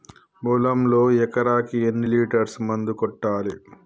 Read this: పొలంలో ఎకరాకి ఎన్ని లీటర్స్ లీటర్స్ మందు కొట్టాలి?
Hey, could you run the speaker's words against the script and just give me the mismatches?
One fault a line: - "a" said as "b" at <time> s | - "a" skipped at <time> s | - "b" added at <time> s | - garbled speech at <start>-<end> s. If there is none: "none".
- "లీటర్స్" skipped at 2.6 s